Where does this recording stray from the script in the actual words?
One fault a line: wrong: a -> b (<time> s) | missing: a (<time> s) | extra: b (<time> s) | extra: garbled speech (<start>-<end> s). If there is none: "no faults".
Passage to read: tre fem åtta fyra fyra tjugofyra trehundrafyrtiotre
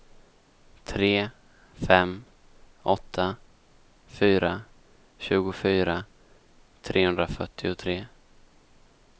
missing: fyra (4.6 s)